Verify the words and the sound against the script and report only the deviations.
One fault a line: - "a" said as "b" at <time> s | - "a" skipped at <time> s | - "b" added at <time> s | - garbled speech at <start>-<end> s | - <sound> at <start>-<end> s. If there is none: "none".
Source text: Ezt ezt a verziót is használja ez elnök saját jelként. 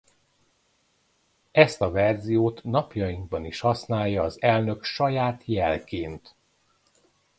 - "ezt" skipped at 1.8 s
- "napjainkban" added at 2.6 s
- "ez" said as "az" at 4.2 s